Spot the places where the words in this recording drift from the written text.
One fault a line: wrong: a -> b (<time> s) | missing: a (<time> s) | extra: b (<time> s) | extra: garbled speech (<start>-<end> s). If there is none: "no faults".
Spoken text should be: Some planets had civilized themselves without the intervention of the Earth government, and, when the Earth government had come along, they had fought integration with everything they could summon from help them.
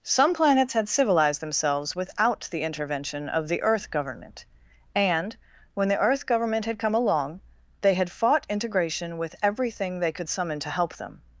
wrong: from -> to (10.6 s)